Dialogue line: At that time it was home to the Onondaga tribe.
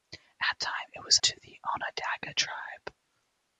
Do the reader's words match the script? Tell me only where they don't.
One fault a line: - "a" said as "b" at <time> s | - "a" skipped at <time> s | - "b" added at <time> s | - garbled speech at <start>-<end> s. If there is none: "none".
- "that" skipped at 0.6 s
- "home" skipped at 1.2 s